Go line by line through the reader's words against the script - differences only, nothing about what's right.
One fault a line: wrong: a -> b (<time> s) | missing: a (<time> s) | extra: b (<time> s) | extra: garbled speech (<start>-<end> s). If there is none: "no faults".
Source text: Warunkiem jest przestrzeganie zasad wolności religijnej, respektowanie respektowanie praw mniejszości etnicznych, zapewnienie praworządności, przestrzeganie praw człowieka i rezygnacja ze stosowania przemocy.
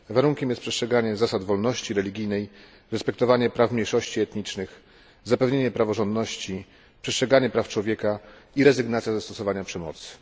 missing: respektowanie (3.5 s)